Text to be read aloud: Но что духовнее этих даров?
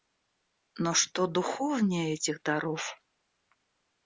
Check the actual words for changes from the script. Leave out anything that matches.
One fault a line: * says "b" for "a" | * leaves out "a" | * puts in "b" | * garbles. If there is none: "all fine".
all fine